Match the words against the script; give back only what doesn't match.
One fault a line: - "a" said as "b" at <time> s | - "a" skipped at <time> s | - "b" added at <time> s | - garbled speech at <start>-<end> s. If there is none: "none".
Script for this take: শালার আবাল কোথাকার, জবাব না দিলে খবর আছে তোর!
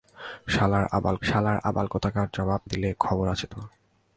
- "শালার আবাল" added at 1.2 s
- "না" skipped at 2.6 s